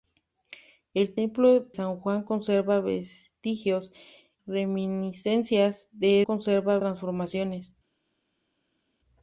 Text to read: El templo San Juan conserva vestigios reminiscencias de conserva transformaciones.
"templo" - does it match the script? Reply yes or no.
yes